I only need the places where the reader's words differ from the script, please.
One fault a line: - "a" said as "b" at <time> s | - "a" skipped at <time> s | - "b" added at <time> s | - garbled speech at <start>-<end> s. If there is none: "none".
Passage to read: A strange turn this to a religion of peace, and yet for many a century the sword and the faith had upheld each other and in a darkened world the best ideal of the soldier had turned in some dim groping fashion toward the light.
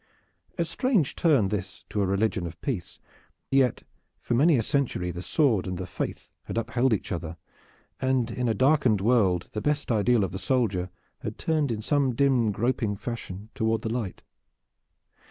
- "and" skipped at 3.0 s